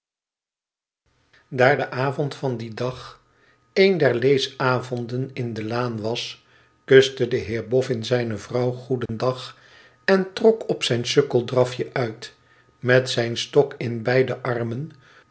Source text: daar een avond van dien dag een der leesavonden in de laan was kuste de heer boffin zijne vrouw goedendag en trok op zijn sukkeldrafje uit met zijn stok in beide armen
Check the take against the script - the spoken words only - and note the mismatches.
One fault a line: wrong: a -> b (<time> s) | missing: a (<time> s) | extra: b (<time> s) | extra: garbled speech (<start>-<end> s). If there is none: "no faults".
wrong: een -> de (1.8 s)